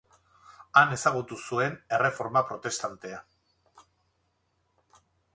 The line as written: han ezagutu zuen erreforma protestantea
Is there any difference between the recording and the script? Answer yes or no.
no